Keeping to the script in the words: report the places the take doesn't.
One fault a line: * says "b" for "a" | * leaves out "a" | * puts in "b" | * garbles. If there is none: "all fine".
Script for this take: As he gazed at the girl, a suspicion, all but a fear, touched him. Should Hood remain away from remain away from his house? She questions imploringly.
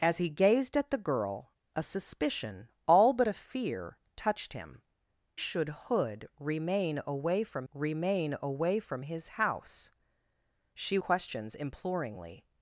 all fine